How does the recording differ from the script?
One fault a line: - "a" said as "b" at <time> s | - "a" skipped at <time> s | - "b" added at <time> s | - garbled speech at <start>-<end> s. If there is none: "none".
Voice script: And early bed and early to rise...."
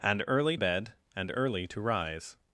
none